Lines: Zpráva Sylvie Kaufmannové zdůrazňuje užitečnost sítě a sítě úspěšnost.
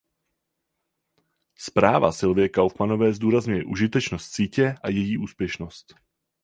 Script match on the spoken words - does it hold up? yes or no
no